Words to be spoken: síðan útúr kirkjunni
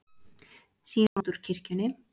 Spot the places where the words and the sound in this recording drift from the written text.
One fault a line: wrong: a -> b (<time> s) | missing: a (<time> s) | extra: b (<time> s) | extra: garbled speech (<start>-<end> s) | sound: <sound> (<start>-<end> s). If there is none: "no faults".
sound: dropout (1.1-1.2 s)